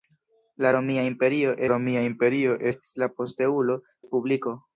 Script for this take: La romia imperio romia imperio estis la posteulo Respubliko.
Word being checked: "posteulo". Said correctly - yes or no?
yes